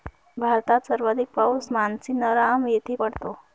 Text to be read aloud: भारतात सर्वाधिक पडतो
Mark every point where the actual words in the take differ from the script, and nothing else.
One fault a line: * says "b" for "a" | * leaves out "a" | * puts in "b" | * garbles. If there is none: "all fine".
* puts in "पाऊस मानसीनराम येथे"